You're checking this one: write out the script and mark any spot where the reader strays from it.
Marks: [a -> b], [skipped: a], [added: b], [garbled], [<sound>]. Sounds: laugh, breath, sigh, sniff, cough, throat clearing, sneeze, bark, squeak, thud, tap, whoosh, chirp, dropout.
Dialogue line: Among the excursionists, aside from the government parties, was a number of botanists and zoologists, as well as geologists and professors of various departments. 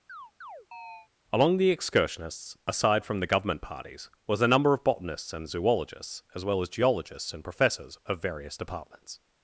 [chirp] Among the excursionists, aside from the government parties, was a number of botanists and zoologists, as well as geologists and professors of various departments.